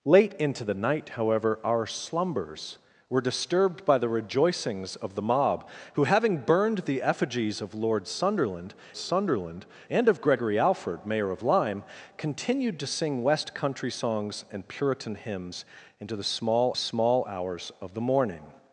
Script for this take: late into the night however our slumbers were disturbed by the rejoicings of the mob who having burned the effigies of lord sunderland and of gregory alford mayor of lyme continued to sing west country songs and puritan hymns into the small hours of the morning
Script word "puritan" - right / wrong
right